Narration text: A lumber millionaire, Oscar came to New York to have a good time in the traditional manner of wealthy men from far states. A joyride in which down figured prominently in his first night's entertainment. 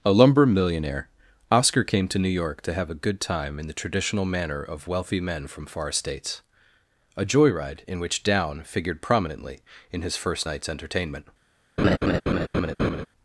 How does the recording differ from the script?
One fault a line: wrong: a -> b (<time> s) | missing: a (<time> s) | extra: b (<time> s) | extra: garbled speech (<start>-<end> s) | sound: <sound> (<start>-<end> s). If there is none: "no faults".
sound: laugh (11.8-13.1 s)